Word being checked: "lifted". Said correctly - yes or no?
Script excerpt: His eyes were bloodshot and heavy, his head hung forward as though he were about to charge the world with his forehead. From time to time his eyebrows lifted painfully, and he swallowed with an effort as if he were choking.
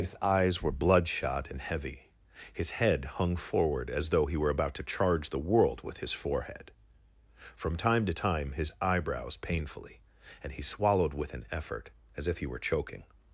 no